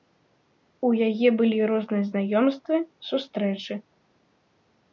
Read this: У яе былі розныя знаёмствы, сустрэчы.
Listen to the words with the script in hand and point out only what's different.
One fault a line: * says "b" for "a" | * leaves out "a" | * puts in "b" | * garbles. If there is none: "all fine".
all fine